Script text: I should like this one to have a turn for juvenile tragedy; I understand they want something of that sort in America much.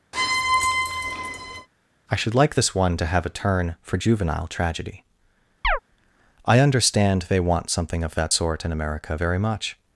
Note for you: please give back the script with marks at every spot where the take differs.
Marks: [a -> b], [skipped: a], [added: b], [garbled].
I should like this one to have a turn for juvenile tragedy; I understand they want something of that sort in America [added: very] much.